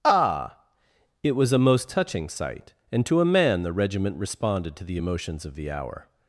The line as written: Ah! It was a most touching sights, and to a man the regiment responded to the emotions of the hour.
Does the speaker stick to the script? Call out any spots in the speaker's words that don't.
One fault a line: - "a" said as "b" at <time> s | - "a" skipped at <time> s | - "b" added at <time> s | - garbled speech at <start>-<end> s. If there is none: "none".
- "sights" said as "sight" at 2.3 s